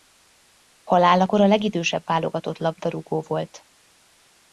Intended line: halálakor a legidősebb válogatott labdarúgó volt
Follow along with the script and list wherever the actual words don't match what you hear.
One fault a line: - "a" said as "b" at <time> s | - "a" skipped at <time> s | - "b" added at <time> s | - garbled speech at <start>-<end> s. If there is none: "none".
none